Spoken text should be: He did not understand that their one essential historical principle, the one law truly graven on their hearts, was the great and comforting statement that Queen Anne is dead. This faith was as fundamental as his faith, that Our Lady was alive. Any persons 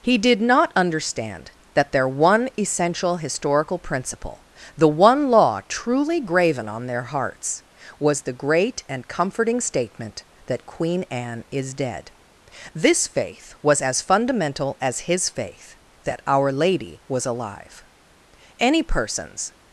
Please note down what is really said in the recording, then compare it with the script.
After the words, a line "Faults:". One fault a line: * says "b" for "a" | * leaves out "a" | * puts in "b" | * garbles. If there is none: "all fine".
He did not understand that their one essential historical principle, the one law truly graven on their hearts, was the great and comforting statement that Queen Anne is dead. This faith was as fundamental as his faith, that Our Lady was alive. Any persons
Faults:
all fine